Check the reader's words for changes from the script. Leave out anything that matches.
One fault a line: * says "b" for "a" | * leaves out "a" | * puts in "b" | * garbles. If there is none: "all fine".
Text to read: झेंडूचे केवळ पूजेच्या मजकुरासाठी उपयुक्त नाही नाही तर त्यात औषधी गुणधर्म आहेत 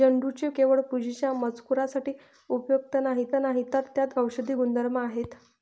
all fine